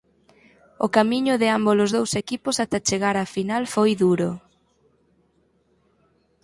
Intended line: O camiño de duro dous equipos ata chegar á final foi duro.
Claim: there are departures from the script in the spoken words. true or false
true